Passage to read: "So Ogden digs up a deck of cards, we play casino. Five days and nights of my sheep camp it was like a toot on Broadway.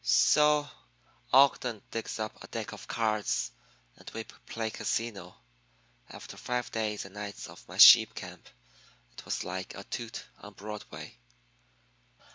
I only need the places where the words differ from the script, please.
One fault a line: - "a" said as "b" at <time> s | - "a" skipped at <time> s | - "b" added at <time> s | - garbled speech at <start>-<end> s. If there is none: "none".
- "and" added at 4.0 s
- "After" added at 6.1 s